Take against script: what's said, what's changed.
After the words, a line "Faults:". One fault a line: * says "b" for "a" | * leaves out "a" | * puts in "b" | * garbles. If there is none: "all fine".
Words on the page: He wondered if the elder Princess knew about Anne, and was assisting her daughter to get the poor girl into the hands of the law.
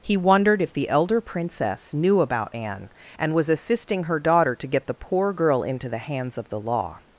He wondered if the elder Princess knew about Anne, and was assisting her daughter to get the poor girl into the hands of the law.
Faults:
all fine